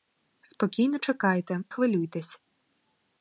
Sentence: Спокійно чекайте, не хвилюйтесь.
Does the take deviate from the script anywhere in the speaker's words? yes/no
yes